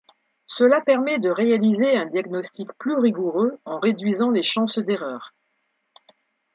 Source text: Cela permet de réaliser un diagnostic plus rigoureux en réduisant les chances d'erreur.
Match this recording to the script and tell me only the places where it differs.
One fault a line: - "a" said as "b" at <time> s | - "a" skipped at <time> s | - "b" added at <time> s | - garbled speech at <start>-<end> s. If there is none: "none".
none